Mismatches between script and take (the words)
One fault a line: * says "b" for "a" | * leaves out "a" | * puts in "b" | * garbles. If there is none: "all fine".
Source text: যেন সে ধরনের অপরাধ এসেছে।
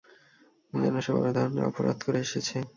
* puts in "বড়"
* puts in "করে"